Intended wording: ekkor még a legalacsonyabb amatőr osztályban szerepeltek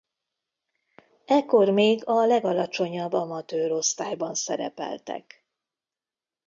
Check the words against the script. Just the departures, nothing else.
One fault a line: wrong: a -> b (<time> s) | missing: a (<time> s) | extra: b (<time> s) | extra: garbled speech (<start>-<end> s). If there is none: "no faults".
no faults